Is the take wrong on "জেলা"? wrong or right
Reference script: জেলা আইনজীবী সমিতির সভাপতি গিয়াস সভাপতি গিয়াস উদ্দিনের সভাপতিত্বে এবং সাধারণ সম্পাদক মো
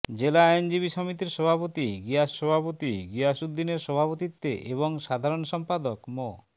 right